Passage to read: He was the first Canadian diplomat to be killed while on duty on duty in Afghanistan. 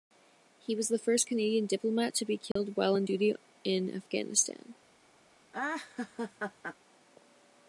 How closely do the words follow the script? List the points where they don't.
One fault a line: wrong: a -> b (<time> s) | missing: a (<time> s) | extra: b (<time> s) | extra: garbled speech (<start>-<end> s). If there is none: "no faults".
missing: on duty (3.3 s)